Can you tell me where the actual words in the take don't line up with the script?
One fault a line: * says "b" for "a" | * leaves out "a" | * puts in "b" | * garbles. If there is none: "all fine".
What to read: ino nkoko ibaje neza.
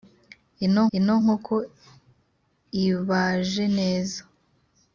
* puts in "ino"